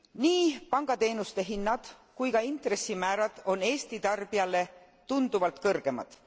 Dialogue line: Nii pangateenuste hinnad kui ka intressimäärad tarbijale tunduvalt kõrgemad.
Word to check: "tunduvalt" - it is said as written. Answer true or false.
true